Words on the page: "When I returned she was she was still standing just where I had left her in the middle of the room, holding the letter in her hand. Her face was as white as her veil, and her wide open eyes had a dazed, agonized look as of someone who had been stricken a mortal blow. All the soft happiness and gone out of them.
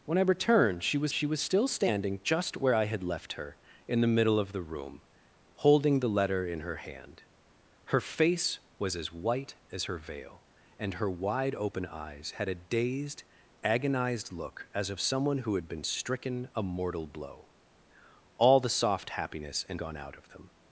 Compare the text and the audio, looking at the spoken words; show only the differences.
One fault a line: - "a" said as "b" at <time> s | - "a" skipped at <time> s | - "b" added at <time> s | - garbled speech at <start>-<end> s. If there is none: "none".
none